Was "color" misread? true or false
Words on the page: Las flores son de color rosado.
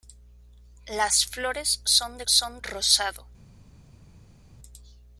true